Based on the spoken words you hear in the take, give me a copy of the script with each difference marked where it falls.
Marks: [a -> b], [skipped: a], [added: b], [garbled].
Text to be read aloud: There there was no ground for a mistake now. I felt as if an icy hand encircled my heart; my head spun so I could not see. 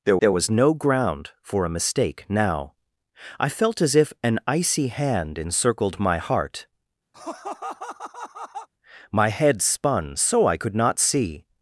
There there was no ground for a mistake now. I felt as if an icy hand encircled my heart; my head spun so I could not see.